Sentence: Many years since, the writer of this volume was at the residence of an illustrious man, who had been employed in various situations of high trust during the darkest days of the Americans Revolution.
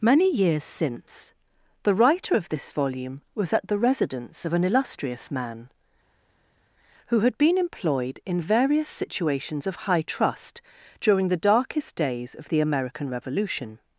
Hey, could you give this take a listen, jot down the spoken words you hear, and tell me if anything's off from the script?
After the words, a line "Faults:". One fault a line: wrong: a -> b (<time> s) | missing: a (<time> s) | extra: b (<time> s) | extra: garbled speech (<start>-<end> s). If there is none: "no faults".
Many years since, the writer of this volume was at the residence of an illustrious man, who had been employed in various situations of high trust during the darkest days of the American Revolution.
Faults:
wrong: Americans -> American (12.6 s)